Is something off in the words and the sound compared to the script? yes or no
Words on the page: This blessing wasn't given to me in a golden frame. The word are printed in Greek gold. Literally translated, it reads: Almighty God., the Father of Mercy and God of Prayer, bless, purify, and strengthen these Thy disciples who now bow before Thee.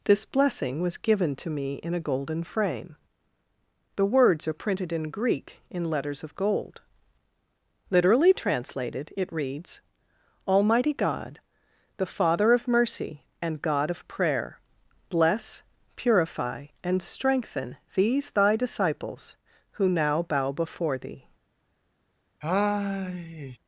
yes